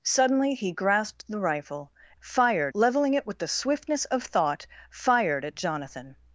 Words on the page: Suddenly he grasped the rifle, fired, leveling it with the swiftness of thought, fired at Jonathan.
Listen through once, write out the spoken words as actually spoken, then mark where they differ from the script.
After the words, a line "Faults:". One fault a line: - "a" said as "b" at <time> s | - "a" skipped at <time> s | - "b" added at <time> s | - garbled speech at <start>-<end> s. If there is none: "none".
Suddenly he grasped the rifle, fired, leveling it with the swiftness of thought, fired at Jonathan.
Faults:
none